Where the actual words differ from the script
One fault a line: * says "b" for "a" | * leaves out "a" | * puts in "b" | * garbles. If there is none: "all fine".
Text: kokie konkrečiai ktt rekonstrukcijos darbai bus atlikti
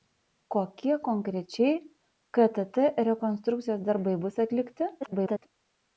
* garbles